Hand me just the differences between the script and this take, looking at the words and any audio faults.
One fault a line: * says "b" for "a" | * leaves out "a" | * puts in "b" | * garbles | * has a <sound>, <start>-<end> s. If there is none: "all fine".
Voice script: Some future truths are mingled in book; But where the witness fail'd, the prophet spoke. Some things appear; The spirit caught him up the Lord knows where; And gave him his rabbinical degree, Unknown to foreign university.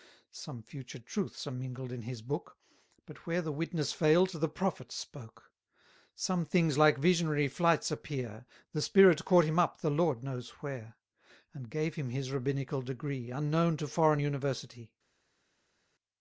* puts in "his"
* puts in "like visionary flights"